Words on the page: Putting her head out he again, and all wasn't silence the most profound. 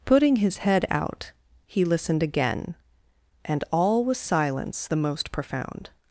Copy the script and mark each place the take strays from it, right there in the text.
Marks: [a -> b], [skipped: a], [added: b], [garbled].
Putting [her -> his] head out he [added: listened] again, and all [wasn't -> was] silence the most profound.